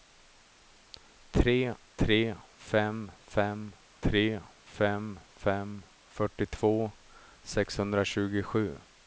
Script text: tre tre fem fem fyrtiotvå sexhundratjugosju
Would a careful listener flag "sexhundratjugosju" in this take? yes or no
no